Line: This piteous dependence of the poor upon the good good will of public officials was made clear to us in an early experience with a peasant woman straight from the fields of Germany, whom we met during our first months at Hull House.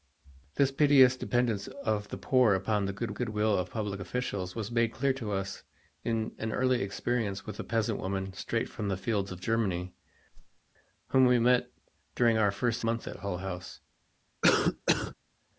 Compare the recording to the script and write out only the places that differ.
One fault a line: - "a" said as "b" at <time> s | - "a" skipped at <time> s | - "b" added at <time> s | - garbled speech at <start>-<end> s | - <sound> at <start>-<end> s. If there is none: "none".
- whoosh at 10.3-10.6 s
- cough at 14.4-15.1 s